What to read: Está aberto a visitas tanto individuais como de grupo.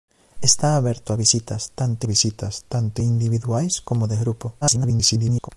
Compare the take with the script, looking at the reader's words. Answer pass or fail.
fail